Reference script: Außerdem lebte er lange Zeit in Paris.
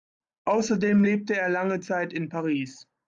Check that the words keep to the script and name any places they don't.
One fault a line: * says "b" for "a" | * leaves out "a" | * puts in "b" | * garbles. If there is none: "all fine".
all fine